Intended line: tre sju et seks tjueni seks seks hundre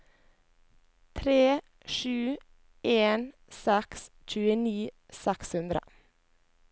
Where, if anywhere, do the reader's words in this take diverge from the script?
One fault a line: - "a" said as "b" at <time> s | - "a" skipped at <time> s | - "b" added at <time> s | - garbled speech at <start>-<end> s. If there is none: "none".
- "et" said as "en" at 2.9 s
- "seks" skipped at 5.5 s